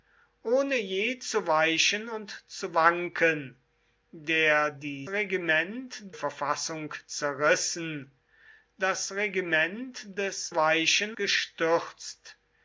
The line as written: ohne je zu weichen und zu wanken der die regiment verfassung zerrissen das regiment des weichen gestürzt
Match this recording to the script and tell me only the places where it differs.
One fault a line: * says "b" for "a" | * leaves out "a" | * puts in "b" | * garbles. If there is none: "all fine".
all fine